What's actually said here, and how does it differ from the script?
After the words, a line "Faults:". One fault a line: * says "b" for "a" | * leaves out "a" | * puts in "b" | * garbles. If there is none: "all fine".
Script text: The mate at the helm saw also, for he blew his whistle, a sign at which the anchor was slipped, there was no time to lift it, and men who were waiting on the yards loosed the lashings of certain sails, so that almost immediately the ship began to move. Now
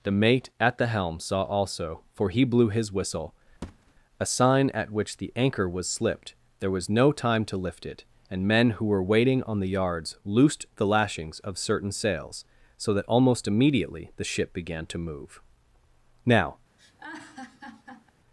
The mate at the helm saw also, for he blew his whistle, a sign at which the anchor was slipped, there was no time to lift it, and men who were waiting on the yards loosed the lashings of certain sails, so that almost immediately the ship began to move. Now
Faults:
all fine